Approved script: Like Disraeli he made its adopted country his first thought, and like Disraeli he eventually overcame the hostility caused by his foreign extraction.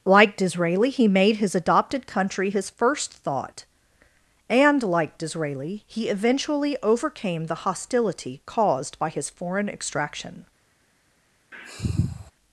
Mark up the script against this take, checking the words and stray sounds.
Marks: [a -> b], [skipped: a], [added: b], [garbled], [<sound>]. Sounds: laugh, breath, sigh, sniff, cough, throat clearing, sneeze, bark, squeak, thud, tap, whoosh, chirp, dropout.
Like Disraeli he made [its -> his] adopted country his first thought, and like Disraeli he eventually overcame the hostility caused by his foreign extraction. [sniff]